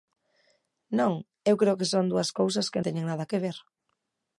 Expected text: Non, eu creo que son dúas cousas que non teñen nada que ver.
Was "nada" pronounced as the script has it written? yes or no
yes